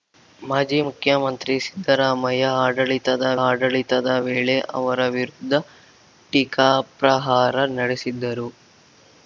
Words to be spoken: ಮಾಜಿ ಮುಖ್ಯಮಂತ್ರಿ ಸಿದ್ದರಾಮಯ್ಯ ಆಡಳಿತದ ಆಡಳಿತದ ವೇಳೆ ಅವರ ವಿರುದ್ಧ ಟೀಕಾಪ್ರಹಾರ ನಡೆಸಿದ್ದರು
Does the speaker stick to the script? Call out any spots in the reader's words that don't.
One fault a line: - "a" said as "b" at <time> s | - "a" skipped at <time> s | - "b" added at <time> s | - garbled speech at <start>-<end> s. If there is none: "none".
none